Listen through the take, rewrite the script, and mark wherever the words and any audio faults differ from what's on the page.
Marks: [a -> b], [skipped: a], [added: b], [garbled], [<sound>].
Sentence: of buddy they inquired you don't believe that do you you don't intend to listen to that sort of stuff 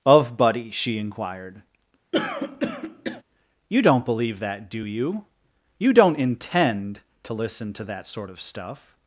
of buddy [they -> she] inquired [throat clearing] you don't believe that do you you don't intend to listen to that sort of stuff